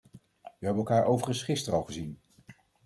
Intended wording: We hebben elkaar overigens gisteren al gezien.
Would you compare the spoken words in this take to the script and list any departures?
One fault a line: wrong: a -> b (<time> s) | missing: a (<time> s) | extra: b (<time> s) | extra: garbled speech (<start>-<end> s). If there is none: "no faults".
no faults